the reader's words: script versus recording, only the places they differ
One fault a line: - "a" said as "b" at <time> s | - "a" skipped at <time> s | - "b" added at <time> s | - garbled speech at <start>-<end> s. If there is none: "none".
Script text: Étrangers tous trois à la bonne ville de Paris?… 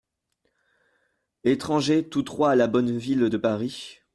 none